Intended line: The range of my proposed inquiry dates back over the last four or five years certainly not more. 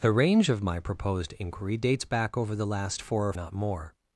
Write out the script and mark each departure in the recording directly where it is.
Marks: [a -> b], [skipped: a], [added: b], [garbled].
The range of my proposed inquiry dates back over the last four or [skipped: five years certainly] not more.